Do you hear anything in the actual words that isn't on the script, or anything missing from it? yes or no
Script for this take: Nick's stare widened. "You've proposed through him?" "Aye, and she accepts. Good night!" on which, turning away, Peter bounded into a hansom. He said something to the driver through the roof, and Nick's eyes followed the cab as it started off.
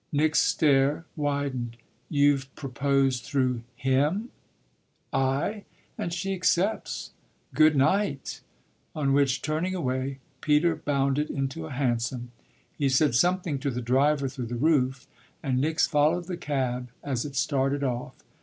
yes